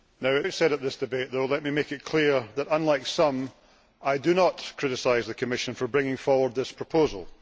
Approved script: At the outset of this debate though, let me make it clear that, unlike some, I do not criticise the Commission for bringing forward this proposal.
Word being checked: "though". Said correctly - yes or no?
yes